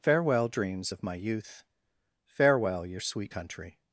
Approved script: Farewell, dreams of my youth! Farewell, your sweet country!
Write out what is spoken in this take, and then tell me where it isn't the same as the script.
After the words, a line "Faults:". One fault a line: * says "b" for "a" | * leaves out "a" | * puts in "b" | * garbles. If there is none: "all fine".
Farewell, dreams of my youth! Farewell, your sweet country!
Faults:
all fine